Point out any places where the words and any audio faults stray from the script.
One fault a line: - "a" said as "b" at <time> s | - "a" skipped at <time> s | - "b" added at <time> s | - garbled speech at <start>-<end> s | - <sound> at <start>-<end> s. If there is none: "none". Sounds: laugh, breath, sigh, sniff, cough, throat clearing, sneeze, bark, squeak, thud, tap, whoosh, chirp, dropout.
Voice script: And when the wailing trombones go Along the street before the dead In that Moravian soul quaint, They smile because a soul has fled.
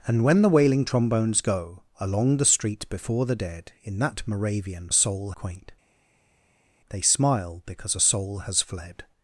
none